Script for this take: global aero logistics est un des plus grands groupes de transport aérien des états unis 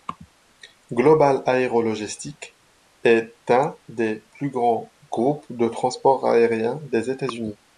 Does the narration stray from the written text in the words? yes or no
no